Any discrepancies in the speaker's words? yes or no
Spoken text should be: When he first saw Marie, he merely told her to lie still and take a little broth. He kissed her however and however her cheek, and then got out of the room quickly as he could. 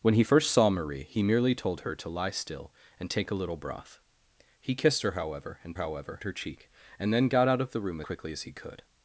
no